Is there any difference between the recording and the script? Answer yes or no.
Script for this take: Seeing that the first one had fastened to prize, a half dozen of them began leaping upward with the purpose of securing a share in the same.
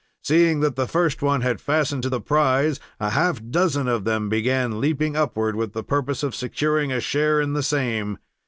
yes